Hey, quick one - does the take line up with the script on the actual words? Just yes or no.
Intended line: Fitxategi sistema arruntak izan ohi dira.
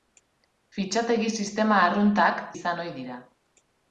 yes